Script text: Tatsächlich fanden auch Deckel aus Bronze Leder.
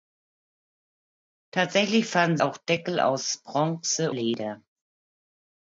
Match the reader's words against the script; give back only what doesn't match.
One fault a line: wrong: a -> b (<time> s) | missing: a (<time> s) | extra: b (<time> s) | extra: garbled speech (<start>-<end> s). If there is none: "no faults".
no faults